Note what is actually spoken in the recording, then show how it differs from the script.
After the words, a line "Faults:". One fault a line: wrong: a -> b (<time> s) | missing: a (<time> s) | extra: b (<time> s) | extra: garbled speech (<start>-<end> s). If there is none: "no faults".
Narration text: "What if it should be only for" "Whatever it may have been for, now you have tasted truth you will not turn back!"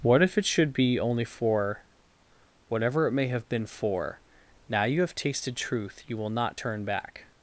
"What if it should be only for" "Whatever it may have been for, now you have tasted truth you will not turn back!"
Faults:
no faults